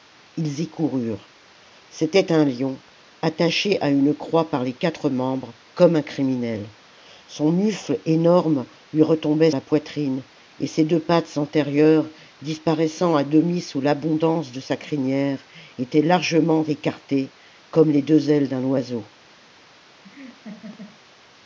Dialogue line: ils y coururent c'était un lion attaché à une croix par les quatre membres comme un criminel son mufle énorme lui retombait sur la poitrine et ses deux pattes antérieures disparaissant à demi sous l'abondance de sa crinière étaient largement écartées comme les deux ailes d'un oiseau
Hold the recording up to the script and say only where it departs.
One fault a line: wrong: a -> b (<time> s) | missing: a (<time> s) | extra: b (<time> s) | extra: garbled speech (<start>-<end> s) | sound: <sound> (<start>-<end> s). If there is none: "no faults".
missing: sur (9.5 s)
sound: laugh (20.0-21.0 s)